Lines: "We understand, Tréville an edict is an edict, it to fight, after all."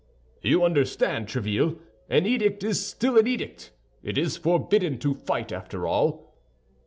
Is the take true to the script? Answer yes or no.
no